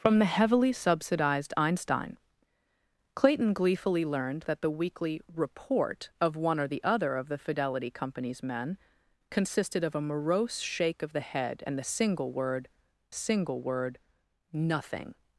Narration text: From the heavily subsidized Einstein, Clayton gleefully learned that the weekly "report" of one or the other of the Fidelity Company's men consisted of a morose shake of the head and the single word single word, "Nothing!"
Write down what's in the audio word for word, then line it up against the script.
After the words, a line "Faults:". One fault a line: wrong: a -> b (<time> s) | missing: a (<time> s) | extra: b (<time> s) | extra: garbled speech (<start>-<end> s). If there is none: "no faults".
From the heavily subsidized Einstein, Clayton gleefully learned that the weekly "report" of one or the other of the Fidelity Company's men consisted of a morose shake of the head and the single word single word, "Nothing!"
Faults:
no faults